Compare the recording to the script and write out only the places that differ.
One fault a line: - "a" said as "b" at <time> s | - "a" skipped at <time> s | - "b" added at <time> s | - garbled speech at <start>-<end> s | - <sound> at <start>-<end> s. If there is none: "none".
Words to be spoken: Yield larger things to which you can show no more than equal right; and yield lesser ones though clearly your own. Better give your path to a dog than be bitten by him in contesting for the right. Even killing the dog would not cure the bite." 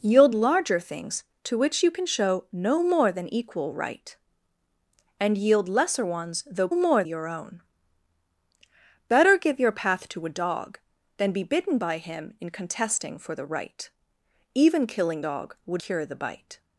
- "clearly" said as "more" at 6.7 s
- "the" skipped at 15.2 s
- "not" skipped at 15.8 s